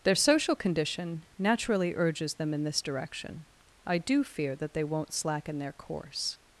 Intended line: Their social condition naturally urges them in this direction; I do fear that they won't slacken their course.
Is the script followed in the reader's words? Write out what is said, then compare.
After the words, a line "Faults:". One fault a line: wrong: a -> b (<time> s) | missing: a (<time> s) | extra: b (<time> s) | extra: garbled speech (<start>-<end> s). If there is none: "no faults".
Their social condition naturally urges them in this direction; I do fear that they won't slacken their course.
Faults:
no faults